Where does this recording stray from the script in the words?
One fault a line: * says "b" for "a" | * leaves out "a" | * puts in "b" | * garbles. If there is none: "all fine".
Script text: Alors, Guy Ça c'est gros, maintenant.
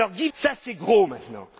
all fine